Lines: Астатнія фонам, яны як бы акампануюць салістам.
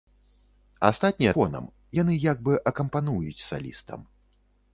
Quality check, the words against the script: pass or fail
pass